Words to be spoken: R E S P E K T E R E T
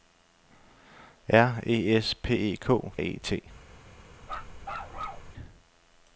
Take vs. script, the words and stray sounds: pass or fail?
fail